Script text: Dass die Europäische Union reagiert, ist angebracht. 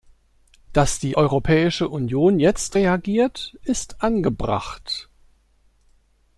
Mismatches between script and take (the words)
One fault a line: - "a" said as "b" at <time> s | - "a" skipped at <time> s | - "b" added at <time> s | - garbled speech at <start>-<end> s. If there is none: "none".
- "jetzt" added at 2.4 s